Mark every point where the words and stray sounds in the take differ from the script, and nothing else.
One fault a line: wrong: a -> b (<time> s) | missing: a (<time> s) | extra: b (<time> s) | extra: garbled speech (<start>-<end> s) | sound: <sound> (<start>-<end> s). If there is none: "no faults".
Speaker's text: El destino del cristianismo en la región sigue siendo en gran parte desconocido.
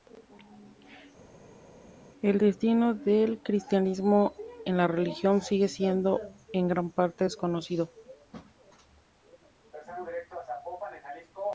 no faults